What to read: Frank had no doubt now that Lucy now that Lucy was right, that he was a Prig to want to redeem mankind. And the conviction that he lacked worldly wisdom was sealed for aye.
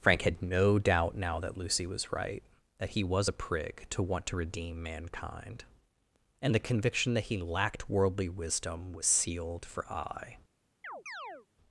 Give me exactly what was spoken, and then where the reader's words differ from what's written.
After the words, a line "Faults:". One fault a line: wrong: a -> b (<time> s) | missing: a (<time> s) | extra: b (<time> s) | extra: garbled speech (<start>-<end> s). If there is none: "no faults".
Frank had no doubt now that Lucy was right, that he was a Prig to want to redeem mankind. And the conviction that he lacked worldly wisdom was sealed for aye.
Faults:
missing: now that Lucy (1.9 s)